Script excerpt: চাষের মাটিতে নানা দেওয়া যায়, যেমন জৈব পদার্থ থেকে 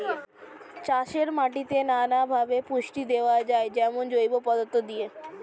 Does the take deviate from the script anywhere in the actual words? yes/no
yes